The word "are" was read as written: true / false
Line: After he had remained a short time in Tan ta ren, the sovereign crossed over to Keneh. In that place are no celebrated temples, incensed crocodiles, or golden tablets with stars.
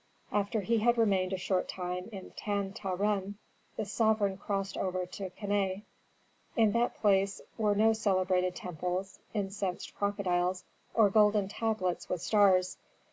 false